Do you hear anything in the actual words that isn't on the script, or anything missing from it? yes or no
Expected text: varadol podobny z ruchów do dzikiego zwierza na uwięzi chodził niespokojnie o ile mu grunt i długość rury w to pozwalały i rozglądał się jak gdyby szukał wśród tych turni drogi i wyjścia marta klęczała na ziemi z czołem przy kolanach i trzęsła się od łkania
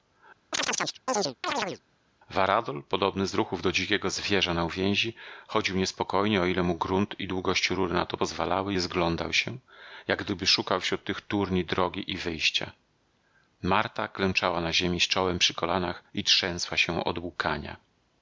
yes